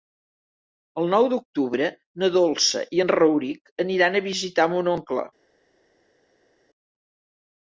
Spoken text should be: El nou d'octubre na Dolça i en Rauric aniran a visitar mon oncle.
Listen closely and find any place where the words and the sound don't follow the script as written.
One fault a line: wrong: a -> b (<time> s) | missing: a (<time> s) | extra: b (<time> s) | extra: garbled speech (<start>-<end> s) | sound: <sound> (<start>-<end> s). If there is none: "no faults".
no faults